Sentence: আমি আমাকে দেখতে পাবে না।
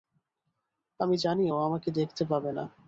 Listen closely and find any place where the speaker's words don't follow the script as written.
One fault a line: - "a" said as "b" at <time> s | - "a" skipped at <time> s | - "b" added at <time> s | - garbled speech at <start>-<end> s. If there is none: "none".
- "জানি ও" added at 1.2 s